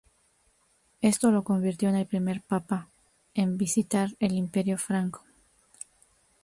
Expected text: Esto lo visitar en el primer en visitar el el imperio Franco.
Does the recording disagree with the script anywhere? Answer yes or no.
yes